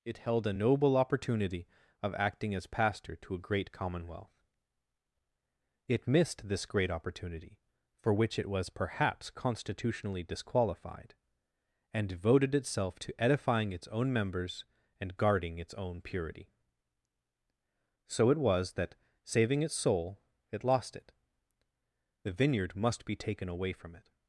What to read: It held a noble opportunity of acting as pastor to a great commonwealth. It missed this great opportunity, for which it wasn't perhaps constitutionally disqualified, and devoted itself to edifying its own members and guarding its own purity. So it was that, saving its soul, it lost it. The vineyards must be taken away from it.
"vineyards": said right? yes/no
no